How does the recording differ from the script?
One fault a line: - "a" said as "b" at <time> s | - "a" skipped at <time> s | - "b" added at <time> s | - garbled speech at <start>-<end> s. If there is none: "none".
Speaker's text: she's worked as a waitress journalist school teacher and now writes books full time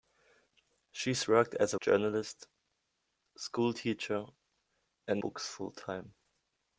- "waitress" skipped at 1.8 s
- "now writes" skipped at 5.2 s